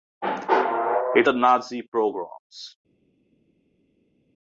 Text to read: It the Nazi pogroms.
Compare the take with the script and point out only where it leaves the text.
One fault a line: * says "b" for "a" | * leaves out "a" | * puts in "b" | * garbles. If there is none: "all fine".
all fine